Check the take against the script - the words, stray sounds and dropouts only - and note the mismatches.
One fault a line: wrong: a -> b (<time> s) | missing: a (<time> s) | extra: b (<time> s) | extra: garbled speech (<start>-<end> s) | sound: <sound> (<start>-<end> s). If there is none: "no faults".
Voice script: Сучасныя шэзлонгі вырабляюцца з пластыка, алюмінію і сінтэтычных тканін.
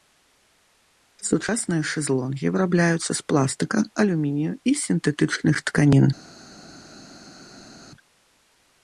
no faults